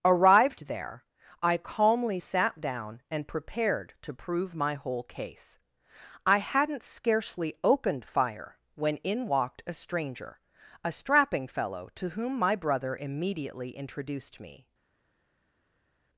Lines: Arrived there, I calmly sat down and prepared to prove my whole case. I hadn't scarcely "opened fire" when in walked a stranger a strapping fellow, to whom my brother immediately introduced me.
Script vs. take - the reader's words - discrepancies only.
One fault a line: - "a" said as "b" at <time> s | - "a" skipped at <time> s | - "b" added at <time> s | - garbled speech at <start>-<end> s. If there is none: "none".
none